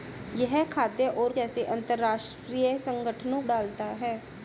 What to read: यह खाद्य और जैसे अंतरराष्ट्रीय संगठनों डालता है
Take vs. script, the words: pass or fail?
pass